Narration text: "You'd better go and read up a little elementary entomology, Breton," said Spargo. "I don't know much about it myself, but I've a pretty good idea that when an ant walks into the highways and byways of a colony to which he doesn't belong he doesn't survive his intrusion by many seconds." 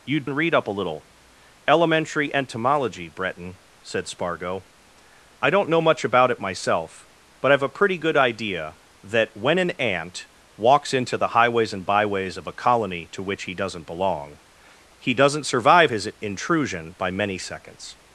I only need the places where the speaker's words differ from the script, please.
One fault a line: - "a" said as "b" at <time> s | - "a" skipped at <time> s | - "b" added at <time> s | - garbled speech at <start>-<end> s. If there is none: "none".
- "better go" skipped at 0.2 s